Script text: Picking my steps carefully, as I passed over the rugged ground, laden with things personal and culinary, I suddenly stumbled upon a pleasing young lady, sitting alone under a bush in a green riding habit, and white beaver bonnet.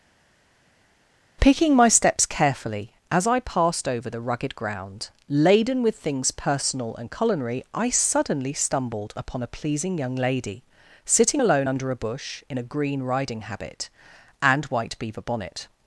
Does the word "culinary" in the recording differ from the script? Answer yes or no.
no